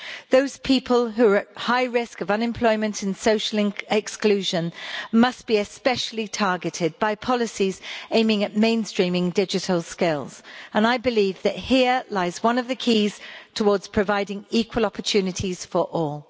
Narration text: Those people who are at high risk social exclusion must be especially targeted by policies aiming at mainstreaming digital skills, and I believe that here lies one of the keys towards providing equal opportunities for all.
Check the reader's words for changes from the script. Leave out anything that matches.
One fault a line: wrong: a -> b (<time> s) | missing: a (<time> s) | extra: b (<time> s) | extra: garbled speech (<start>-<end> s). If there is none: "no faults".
extra: of unemployment and (2.2 s)